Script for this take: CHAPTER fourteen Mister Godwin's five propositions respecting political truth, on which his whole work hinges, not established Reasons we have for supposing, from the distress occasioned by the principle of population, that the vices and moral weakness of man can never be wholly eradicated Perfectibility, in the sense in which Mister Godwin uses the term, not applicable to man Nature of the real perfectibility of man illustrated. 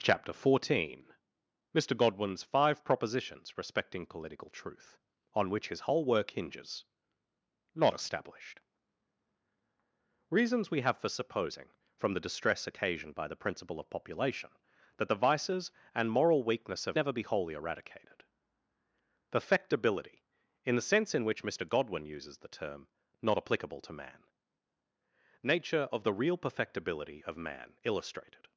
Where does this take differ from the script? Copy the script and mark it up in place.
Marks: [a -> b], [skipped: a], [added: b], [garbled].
CHAPTER fourteen Mister Godwin's five propositions respecting political truth, on which his whole work hinges, not established Reasons we have for supposing, from the distress occasioned by the principle of population, that the vices and moral weakness of [skipped: man can] never be wholly eradicated Perfectibility, in the sense in which Mister Godwin uses the term, not applicable to man Nature of the real perfectibility of man illustrated.